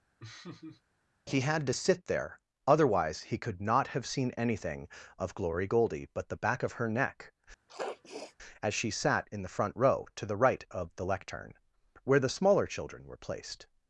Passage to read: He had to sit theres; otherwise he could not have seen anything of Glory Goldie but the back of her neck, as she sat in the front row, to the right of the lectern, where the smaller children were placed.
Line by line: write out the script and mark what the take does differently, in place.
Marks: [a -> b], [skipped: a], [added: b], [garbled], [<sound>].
[laugh] He had to sit [theres; -> there] otherwise he could not have seen anything of Glory Goldie but the back of her neck, [sniff] as she sat in the front row, to the right of the lectern, where the smaller children were placed.